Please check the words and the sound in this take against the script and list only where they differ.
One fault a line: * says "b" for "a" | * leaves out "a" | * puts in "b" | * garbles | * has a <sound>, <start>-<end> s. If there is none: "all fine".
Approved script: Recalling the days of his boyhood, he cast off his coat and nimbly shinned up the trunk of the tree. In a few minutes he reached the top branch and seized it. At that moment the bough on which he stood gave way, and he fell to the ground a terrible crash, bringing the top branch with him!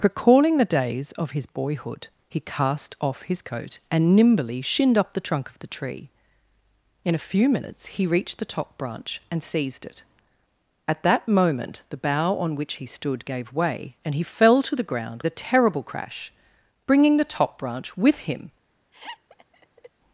* has a laugh, 18.9-19.9 s